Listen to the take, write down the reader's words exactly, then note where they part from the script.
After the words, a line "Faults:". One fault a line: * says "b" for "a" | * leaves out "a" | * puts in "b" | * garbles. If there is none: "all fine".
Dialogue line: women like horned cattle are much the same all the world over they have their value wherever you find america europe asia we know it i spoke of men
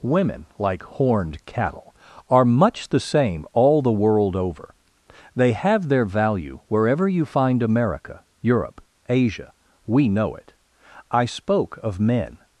women like horned cattle are much the same all the world over they have their value wherever you find america europe asia we know it i spoke of men
Faults:
all fine